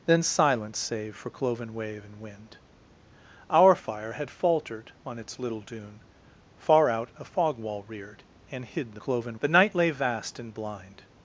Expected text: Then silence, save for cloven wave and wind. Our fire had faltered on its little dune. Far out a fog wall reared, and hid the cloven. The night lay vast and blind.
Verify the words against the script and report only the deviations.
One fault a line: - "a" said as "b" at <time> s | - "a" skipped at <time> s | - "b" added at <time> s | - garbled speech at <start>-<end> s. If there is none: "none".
none